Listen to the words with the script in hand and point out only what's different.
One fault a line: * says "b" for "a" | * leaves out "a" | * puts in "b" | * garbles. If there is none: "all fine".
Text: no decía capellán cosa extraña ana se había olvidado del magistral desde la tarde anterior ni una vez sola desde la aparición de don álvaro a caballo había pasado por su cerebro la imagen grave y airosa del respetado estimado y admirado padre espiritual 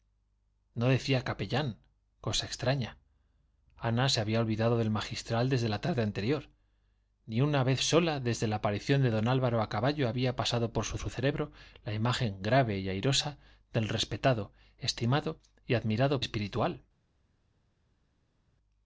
* puts in "su"
* leaves out "padre"